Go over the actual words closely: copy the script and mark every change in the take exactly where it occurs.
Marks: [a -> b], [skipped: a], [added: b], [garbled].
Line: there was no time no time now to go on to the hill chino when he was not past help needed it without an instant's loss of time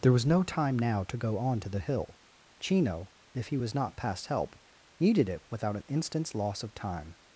there was no time [skipped: no time] now to go on to the hill chino [when -> if] he was not past help needed it without an instant's loss of time